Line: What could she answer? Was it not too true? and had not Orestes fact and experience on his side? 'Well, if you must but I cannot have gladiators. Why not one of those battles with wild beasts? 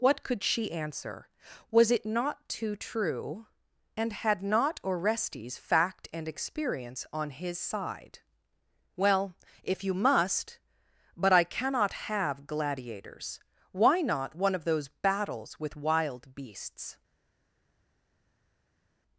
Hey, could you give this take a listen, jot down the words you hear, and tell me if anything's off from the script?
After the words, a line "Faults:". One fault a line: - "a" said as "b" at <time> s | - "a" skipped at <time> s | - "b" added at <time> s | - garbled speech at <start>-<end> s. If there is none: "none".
What could she answer? Was it not too true? and had not Orestes fact and experience on his side? 'Well, if you must but I cannot have gladiators. Why not one of those battles with wild beasts?
Faults:
none